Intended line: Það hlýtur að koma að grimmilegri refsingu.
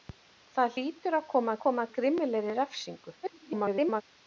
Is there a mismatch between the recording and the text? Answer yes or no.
yes